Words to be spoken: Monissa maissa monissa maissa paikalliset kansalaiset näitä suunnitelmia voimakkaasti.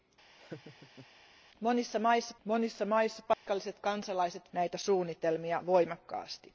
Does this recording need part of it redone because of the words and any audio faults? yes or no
yes